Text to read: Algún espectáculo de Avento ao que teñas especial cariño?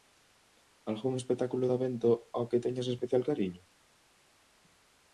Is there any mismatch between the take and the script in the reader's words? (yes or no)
no